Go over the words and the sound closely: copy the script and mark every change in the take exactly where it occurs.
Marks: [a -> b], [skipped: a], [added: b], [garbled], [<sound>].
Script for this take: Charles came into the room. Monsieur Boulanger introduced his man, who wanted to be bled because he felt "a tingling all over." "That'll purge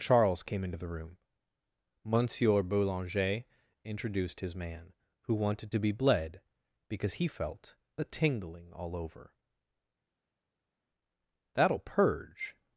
Charles came into the room. Monsieur Boulanger introduced his man, who wanted to be bled because he felt "a tingling all over." "That'll purge